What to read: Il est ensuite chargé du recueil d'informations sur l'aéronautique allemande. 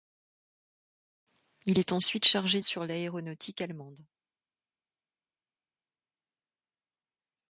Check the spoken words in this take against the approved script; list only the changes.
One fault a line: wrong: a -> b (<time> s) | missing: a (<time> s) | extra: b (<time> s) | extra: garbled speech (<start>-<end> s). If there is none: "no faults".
missing: du recueil d'informations (2.6 s)